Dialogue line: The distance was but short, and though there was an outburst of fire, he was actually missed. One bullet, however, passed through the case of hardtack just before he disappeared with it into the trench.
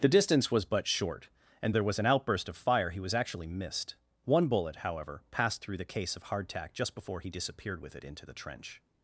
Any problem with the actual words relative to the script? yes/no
yes